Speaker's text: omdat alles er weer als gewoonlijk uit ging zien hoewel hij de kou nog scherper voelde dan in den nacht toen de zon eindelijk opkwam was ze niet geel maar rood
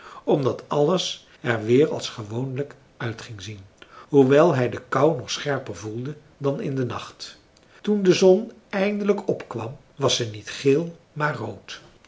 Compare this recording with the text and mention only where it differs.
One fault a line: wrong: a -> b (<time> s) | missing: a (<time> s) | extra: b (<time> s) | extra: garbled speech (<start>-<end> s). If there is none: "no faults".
no faults